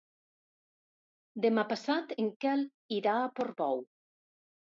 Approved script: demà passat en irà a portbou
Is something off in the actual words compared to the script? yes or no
yes